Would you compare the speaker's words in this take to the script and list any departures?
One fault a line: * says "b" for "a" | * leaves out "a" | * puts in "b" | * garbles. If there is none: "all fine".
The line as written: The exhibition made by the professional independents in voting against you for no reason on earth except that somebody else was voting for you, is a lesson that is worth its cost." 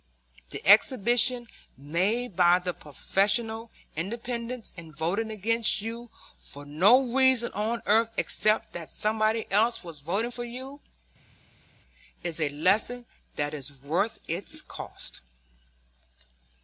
all fine